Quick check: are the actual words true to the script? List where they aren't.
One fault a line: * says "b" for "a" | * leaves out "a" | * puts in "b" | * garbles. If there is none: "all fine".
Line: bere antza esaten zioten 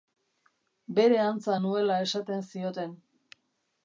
* puts in "nuela"